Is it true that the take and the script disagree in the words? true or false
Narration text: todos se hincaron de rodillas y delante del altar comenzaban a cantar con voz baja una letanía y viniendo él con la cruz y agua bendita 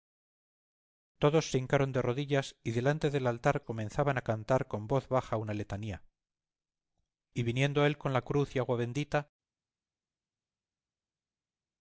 false